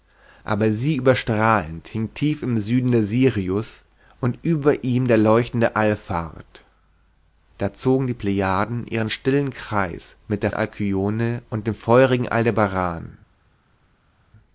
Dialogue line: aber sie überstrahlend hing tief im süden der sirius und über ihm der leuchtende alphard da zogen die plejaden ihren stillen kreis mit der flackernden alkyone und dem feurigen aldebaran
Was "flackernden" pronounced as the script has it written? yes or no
no